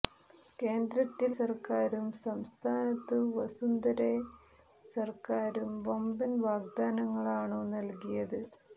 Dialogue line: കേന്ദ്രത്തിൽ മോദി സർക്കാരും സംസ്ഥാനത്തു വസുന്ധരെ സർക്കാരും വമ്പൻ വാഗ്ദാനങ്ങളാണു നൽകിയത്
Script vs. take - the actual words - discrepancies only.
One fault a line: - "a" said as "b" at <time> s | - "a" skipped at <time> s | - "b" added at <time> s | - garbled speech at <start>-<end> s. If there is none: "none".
- "മോദി" skipped at 1.3 s